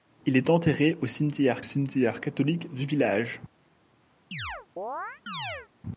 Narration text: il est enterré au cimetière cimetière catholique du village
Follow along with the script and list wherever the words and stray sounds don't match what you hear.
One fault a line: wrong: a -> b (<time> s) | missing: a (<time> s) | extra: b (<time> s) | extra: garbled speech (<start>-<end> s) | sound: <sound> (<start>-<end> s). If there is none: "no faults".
sound: chirp (4.3-5.7 s)